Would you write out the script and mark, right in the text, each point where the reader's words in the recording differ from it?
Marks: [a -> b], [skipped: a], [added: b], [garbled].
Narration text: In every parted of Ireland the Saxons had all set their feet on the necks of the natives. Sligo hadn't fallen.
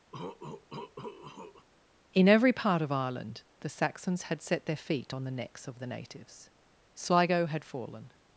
In every [parted -> part] of Ireland the Saxons had [skipped: all] set their feet on the necks of the natives. Sligo [hadn't -> had] fallen.